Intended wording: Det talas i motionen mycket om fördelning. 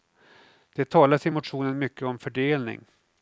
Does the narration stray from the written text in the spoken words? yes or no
no